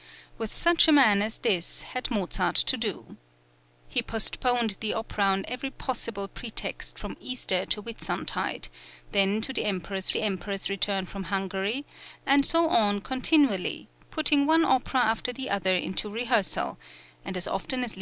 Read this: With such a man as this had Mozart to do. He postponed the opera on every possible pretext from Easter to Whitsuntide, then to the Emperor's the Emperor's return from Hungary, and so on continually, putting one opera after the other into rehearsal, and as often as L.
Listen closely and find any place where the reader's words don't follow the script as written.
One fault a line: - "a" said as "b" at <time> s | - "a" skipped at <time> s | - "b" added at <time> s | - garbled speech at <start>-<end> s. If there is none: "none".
none